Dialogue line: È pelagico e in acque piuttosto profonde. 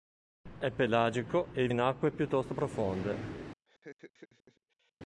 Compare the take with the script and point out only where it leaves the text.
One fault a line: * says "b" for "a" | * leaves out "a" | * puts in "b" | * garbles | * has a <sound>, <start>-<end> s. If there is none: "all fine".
* has a laugh, 3.7-4.9 s